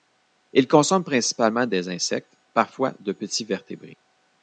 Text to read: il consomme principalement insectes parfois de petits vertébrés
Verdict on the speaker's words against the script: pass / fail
fail